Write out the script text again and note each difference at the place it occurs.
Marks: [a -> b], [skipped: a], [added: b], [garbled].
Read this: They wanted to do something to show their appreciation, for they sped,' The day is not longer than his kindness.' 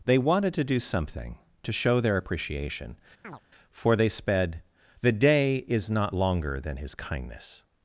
They wanted to do something to show their appreciation, for they sped,' The day is not longer than his kindness.'